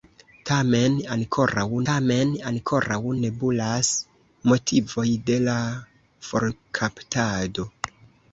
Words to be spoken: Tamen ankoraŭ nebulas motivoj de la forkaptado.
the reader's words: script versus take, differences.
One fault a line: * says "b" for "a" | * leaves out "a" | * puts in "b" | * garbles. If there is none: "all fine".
* puts in "tamen ankoraŭ"